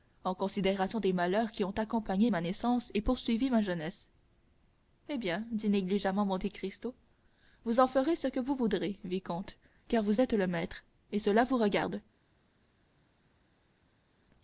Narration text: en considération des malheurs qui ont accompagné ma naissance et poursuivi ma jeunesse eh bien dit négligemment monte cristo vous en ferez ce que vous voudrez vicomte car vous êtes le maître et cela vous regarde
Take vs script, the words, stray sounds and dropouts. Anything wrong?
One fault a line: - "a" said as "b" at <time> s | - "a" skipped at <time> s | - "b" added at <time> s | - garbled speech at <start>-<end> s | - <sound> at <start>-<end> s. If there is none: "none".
none